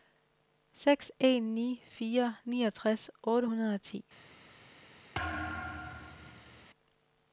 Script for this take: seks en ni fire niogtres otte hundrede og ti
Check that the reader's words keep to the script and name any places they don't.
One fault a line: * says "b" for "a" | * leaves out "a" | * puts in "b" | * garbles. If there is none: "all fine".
all fine